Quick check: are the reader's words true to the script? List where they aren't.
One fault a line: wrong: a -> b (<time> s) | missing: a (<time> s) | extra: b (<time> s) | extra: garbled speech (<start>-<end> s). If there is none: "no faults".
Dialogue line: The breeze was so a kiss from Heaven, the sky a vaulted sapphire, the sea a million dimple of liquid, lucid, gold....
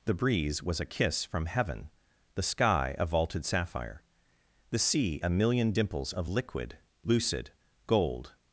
missing: so (0.8 s)
wrong: dimple -> dimples (5.7 s)